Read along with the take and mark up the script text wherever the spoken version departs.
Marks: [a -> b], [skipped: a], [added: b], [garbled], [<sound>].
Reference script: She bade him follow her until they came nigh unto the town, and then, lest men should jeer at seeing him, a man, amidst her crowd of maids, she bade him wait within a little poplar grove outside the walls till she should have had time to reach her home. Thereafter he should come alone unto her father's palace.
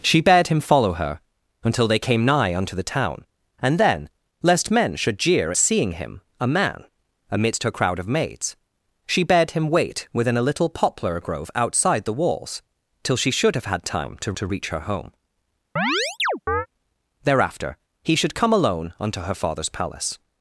She bade him follow her until they came nigh unto the town, and then, lest men should jeer [skipped: at] seeing him, a man, amidst her crowd of maids, she bade him wait within a little poplar grove outside the walls till she should have had time to [added: to] reach her home. [chirp] Thereafter he should come alone unto her father's palace.